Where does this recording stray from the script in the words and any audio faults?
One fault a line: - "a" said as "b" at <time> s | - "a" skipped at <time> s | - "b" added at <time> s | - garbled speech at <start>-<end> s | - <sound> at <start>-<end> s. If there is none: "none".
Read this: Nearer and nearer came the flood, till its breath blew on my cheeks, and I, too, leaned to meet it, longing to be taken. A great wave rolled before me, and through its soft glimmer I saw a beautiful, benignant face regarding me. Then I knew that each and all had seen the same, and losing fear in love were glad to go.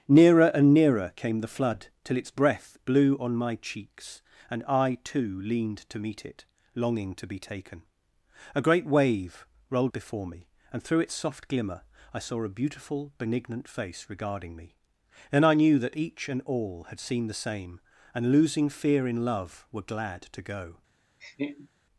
- laugh at 21.2-21.7 s